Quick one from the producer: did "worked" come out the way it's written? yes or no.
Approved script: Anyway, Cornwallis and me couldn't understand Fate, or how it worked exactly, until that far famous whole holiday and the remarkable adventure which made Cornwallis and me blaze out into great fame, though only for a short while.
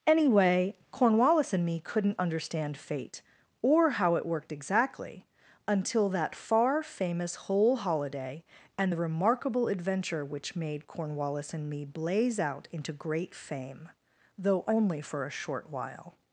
yes